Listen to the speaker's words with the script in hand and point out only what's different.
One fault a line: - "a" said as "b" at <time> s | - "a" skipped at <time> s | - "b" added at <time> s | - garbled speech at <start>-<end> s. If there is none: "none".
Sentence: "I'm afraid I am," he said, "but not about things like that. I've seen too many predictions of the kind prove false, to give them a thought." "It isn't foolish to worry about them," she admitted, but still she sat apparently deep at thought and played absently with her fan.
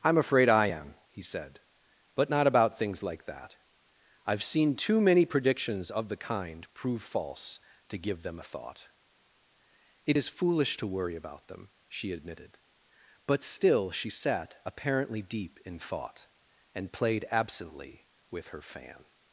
- "isn't" said as "is" at 10.2 s
- "at" said as "in" at 15.6 s